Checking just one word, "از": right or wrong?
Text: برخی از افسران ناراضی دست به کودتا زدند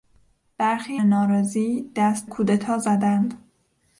wrong